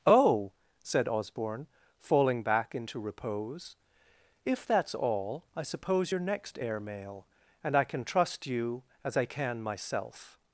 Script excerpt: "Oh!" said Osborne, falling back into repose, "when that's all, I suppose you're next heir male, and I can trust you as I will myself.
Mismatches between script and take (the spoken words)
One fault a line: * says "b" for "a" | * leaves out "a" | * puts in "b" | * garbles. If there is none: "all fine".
* says "if" for "when"
* says "can" for "will"